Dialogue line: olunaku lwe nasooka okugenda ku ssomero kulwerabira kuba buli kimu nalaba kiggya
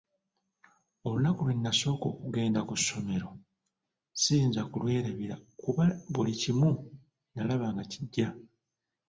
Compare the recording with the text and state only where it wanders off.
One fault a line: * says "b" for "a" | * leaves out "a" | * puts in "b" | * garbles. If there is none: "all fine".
* puts in "siyinza"
* puts in "nga"